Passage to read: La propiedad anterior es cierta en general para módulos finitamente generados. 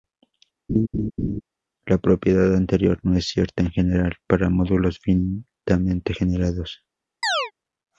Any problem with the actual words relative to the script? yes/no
yes